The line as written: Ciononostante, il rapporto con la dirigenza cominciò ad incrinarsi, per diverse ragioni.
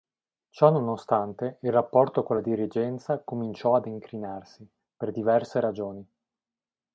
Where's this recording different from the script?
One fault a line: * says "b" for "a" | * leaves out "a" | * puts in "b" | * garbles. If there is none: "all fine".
all fine